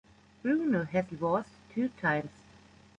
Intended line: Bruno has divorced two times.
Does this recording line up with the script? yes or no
yes